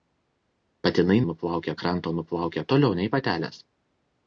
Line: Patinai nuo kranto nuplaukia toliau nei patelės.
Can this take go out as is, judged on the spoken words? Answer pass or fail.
fail